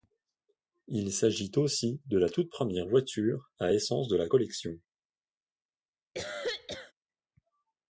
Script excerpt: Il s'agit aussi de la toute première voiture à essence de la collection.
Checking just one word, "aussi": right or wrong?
right